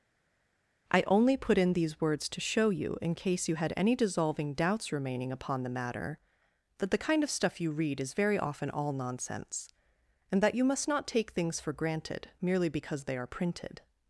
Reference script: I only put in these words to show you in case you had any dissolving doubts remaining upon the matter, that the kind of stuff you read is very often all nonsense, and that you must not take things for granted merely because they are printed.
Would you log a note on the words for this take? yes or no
no